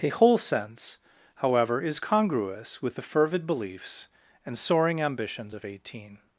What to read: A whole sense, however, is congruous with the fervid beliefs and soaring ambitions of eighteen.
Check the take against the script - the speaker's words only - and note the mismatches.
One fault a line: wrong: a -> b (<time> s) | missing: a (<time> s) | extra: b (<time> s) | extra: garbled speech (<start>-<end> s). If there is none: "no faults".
no faults